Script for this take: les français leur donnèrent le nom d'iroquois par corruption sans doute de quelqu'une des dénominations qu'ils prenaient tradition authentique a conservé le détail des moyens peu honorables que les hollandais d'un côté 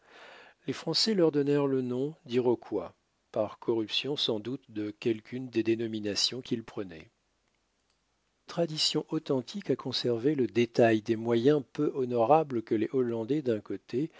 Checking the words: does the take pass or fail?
pass